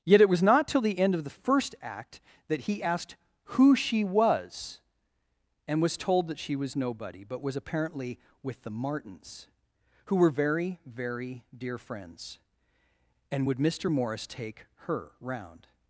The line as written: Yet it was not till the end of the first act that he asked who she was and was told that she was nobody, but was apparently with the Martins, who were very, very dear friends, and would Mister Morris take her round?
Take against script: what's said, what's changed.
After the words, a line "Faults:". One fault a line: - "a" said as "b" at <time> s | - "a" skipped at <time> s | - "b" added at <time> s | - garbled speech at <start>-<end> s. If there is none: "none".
Yet it was not till the end of the first act that he asked who she was and was told that she was nobody, but was apparently with the Martins, who were very, very dear friends, and would Mister Morris take her round?
Faults:
none